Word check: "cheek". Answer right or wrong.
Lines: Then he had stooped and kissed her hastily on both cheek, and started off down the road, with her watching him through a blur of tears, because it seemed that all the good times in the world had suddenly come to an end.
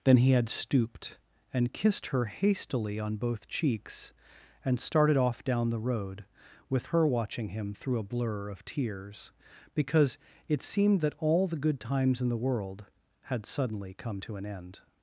wrong